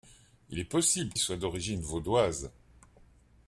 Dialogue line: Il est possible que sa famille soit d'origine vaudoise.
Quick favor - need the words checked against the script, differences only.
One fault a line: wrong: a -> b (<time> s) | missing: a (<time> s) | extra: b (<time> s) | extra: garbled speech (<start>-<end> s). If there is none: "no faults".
missing: que sa famille (1.1 s)